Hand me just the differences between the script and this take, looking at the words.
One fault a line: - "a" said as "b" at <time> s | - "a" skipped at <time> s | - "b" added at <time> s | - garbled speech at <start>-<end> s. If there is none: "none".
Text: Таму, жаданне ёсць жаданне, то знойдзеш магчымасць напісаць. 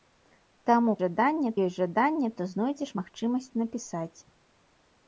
none